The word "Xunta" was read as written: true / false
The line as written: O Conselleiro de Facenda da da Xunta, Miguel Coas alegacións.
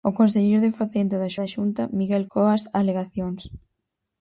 true